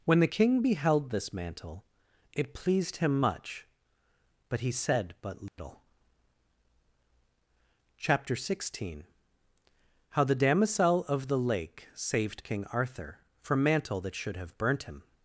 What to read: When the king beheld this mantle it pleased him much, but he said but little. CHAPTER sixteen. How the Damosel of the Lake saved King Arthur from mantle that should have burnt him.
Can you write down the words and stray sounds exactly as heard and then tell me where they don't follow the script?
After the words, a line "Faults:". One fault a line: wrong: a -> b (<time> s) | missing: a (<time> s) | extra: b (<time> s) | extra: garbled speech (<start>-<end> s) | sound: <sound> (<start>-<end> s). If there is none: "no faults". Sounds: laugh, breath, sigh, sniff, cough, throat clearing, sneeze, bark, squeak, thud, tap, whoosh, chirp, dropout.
When the king beheld this mantle it pleased him much, but he said but little. CHAPTER sixteen. How the Damosel of the Lake saved King Arthur from mantle that should have burnt him.
Faults:
sound: dropout (5.5-5.6 s)